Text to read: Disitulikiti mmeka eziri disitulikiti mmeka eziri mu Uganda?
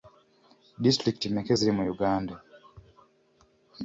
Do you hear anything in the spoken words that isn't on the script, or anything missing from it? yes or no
yes